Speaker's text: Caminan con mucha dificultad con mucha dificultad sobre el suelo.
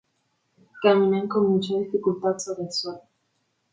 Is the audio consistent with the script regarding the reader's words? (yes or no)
no